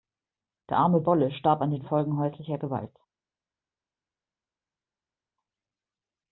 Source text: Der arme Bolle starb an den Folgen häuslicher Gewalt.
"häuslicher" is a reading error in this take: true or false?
false